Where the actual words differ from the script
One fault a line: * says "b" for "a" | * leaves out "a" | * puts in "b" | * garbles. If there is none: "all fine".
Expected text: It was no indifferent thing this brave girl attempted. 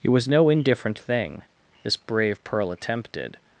* says "pearl" for "girl"